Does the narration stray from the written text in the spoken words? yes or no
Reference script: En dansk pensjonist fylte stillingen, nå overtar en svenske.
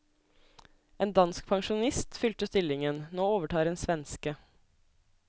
no